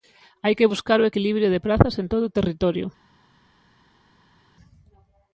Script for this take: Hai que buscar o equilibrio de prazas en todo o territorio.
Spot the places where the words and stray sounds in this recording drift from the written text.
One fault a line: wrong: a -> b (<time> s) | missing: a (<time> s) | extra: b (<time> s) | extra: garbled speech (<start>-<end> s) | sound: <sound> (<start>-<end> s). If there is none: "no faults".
no faults